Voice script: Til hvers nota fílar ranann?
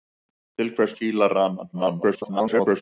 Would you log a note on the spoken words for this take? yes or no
yes